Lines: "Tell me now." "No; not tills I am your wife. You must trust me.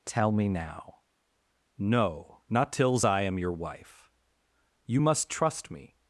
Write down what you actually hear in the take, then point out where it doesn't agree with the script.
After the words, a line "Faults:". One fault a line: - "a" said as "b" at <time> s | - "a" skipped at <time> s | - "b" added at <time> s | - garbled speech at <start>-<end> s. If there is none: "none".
"Tell me now." "No; not tills I am your wife. You must trust me.
Faults:
none